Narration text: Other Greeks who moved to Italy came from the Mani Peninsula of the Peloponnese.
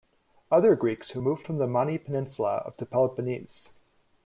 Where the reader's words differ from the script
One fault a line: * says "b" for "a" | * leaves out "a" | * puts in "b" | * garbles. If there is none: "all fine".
* leaves out "to Italy came"